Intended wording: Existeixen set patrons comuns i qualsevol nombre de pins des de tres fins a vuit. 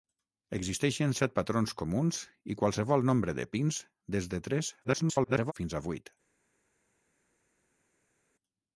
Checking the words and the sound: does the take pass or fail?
fail